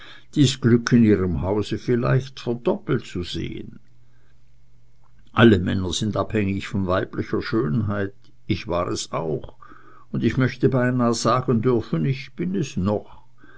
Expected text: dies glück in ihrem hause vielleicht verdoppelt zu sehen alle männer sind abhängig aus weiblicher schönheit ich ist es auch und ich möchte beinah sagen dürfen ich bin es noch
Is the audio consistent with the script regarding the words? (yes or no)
no